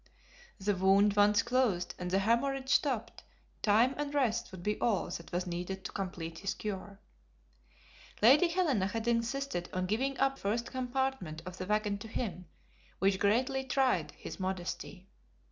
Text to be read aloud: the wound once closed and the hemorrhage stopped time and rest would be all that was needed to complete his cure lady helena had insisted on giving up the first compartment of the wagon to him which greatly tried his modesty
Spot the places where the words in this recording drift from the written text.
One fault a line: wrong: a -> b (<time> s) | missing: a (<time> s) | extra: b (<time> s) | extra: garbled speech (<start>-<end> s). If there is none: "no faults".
missing: the (10.4 s)